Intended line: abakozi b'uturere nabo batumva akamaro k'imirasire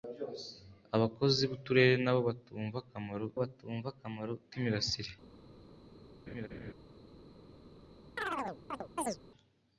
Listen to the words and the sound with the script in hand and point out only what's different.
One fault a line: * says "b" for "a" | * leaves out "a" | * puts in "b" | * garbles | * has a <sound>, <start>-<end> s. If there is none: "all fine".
* puts in "batumva akamaro"
* has a laugh, 6.3-6.7 s
* has a chirp, 8.2-9.2 s